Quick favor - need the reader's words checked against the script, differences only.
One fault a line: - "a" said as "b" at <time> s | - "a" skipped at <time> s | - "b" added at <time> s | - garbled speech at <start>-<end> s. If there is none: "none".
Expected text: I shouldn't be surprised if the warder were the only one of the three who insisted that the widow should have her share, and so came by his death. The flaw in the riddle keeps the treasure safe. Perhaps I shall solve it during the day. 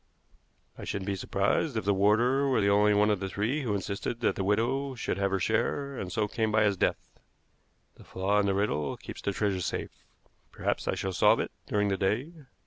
none